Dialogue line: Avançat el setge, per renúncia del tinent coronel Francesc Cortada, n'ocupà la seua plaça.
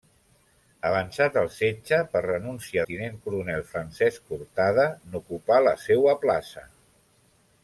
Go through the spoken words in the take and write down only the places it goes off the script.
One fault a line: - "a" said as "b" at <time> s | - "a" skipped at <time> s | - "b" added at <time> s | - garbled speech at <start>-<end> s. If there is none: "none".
- "del" skipped at 2.9 s